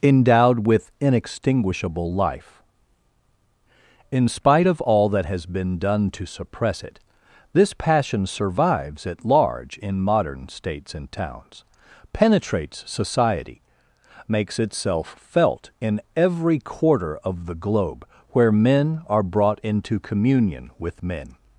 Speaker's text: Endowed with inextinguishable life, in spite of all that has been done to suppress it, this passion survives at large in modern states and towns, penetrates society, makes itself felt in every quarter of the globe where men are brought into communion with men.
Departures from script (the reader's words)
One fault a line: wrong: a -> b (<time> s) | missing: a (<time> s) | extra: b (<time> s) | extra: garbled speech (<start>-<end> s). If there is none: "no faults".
no faults